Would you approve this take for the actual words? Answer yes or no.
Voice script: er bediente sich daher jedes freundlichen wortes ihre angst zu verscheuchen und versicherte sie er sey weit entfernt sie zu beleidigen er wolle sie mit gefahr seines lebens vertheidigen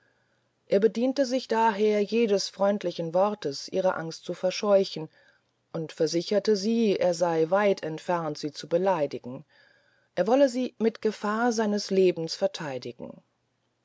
yes